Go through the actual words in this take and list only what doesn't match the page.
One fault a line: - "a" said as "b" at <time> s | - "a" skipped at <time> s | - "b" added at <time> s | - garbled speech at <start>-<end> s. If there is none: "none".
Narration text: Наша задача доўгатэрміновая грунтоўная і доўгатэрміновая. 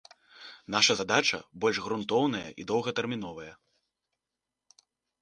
- "доўгатэрміновая" said as "больш" at 1.6 s